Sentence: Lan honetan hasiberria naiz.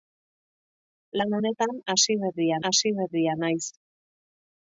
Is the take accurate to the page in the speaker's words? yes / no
no